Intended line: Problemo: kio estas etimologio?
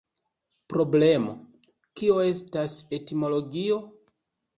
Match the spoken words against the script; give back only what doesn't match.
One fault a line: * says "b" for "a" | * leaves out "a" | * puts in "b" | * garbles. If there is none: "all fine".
all fine